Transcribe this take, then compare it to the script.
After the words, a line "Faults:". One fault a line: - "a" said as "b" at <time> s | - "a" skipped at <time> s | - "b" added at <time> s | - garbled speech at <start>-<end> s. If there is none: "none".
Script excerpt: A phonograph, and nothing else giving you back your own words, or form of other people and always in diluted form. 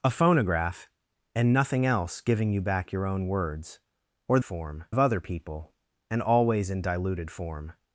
A phonograph, and nothing else giving you back your own words, or form of other people and always in diluted form.
Faults:
none